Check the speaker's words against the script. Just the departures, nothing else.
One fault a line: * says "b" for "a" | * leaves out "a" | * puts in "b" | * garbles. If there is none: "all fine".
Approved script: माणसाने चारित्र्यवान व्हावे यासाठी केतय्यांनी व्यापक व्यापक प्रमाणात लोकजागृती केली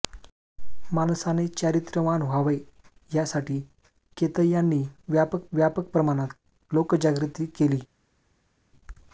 all fine